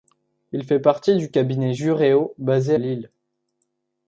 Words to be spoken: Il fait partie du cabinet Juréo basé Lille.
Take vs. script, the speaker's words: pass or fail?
pass